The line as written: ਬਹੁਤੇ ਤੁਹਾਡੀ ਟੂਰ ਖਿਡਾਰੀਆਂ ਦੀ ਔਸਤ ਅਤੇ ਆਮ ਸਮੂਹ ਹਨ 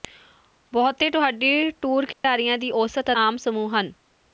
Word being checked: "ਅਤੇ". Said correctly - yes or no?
no